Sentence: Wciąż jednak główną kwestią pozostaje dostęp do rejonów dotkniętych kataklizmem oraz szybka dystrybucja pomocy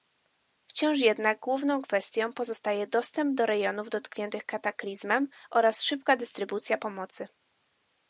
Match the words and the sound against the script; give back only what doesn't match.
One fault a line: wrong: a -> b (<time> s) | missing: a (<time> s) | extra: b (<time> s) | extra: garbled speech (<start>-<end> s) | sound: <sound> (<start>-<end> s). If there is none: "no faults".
no faults